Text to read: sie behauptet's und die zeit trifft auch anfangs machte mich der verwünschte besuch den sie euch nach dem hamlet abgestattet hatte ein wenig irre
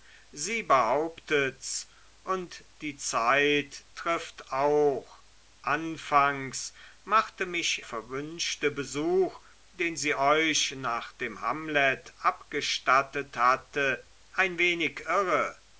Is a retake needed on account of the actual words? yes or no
yes